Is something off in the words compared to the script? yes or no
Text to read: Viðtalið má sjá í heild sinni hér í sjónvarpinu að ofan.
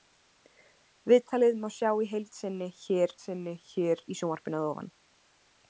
yes